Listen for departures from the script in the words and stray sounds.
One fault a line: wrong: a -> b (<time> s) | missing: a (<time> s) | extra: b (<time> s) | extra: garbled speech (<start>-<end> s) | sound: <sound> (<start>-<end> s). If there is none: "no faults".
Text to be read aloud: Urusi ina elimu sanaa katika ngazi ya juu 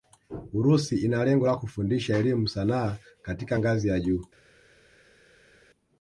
extra: lengo la kufundisha (1.2 s)